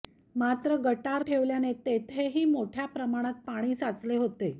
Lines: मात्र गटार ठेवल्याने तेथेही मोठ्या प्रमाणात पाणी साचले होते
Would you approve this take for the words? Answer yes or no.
yes